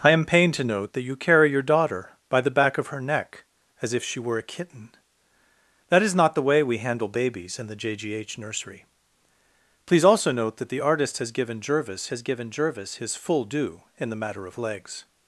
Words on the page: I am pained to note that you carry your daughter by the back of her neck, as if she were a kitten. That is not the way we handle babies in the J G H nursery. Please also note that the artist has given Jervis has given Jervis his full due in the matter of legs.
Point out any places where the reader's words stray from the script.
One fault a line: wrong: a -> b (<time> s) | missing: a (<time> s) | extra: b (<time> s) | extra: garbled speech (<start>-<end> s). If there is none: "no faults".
no faults